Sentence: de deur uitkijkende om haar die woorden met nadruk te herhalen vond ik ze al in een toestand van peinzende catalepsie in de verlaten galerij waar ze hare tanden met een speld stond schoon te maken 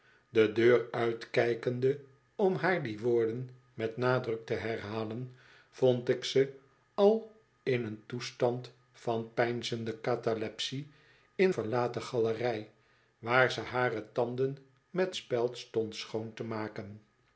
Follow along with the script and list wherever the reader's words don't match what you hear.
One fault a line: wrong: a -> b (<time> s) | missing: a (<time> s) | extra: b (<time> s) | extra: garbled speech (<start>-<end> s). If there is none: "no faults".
missing: de (11.5 s)
missing: een (15.1 s)